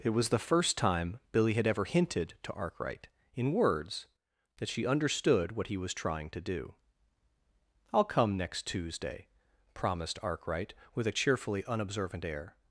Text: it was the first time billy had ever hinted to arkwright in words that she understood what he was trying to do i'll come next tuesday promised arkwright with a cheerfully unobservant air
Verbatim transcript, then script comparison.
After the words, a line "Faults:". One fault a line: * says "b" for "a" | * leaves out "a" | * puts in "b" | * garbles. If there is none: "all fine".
it was the first time billy had ever hinted to arkwright in words that she understood what he was trying to do i'll come next tuesday promised arkwright with a cheerfully unobservant air
Faults:
all fine